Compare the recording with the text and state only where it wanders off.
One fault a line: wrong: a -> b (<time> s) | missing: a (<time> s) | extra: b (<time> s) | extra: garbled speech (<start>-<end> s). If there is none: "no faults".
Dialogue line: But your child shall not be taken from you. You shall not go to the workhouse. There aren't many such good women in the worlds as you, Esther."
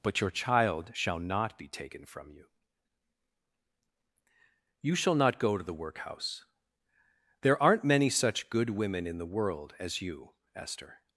wrong: worlds -> world (9.3 s)